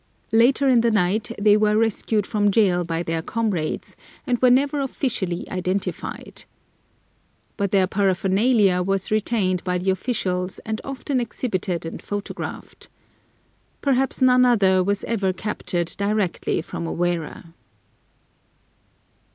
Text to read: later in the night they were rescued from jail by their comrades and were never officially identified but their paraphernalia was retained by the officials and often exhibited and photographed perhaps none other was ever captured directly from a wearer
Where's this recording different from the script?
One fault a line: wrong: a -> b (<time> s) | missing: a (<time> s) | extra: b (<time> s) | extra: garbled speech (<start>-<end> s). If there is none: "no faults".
no faults